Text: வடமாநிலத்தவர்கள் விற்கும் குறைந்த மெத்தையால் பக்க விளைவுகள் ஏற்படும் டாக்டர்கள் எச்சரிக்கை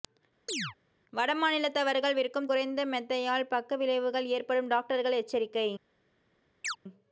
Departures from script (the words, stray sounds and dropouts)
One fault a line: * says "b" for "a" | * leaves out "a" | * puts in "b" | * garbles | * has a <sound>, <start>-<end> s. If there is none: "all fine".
* has a chirp, 0.5-0.8 s
* has a chirp, 6.6-6.8 s